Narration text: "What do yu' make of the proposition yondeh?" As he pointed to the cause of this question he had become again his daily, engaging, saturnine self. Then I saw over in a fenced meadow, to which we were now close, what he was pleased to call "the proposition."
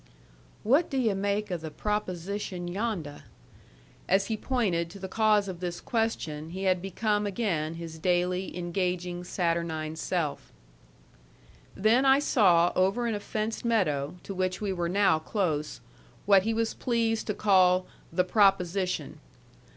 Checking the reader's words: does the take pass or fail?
pass